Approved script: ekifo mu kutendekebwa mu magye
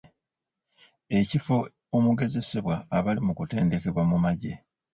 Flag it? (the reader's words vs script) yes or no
yes